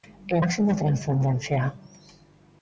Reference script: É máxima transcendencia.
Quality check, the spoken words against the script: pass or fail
pass